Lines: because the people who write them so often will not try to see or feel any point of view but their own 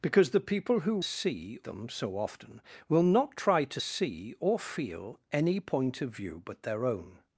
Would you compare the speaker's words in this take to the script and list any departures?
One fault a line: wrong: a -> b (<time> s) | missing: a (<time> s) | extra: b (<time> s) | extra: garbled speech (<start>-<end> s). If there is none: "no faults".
wrong: write -> see (1.0 s)